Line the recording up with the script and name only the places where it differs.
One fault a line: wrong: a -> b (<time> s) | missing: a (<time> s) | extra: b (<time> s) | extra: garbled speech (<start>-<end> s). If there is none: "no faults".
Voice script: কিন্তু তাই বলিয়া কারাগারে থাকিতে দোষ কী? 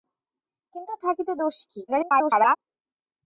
missing: তাই বলিয়া কারাগারে (0.9 s)
extra: garbled speech (1.9-2.6 s)